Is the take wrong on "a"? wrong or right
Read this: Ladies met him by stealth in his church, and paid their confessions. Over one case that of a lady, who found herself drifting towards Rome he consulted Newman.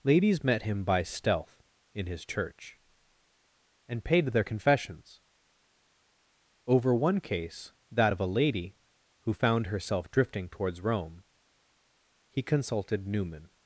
right